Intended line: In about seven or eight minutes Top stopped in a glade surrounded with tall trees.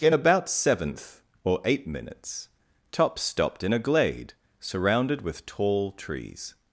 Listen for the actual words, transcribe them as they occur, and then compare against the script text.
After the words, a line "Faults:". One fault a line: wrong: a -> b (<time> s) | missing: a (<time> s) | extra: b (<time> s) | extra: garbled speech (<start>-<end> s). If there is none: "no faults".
In about seventh or eight minutes Top stopped in a glade surrounded with tall trees.
Faults:
wrong: seven -> seventh (0.5 s)